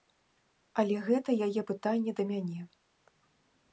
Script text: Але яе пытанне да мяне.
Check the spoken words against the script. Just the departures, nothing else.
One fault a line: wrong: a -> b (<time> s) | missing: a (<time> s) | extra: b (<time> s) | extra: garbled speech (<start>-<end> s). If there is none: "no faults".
extra: гэта (1.1 s)